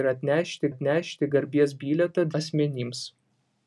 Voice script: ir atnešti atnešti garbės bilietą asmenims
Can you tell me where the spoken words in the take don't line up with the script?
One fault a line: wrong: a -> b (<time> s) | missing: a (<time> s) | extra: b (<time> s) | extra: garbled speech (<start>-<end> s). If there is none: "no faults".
no faults